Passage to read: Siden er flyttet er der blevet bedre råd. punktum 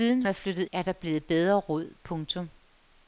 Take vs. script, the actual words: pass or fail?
pass